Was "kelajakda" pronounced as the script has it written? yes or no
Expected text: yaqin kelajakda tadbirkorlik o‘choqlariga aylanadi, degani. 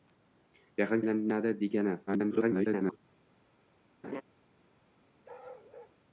no